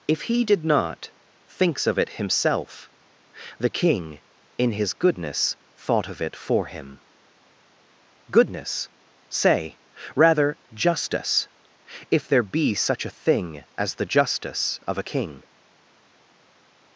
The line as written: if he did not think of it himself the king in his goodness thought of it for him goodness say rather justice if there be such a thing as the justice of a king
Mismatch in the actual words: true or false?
true